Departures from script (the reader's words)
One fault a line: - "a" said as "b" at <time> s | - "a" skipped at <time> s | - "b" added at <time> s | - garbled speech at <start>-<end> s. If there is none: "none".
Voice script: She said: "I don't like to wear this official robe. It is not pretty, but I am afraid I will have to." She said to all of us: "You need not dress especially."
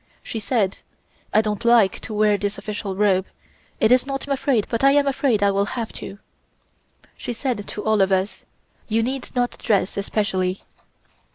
- "pretty" said as "afraid" at 4.3 s